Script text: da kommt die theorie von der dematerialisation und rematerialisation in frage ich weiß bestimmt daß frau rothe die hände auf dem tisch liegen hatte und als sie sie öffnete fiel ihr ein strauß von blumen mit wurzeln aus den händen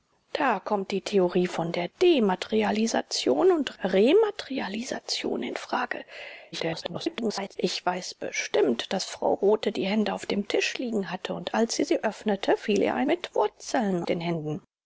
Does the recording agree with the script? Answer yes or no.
no